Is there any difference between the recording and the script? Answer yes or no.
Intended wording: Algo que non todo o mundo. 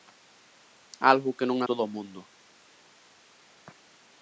no